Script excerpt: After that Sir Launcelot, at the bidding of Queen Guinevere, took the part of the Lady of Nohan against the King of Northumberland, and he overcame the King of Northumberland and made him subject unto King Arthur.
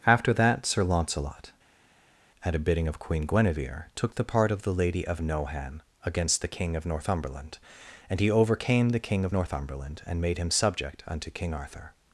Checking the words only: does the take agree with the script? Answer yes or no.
no